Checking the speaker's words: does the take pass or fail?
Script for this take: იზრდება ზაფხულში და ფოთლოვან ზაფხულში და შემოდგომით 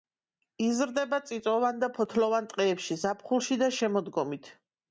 fail